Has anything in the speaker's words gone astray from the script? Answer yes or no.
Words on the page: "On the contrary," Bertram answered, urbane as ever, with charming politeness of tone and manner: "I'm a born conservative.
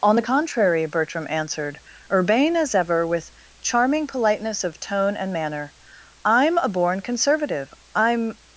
yes